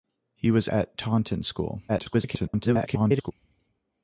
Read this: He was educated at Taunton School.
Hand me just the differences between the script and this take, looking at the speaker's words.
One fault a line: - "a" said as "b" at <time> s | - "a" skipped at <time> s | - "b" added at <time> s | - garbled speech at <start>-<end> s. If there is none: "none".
- "educated" skipped at 0.7 s
- garbled speech at 1.9-3.3 s